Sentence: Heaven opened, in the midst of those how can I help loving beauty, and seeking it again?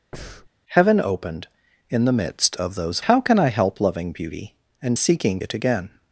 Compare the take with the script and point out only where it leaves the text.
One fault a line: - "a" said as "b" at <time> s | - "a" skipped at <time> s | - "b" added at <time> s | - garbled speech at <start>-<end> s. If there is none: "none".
none